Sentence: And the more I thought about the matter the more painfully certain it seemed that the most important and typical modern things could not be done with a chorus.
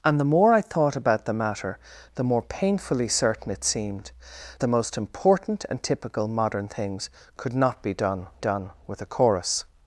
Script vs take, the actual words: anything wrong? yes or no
yes